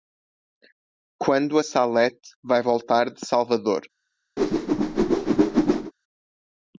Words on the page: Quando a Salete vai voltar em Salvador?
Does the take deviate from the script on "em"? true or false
true